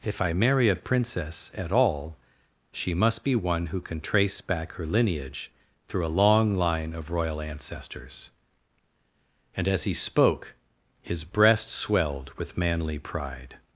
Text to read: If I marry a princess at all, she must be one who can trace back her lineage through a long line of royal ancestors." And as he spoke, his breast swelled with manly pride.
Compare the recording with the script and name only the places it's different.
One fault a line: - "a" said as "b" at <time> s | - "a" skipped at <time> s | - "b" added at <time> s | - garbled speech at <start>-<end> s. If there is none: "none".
none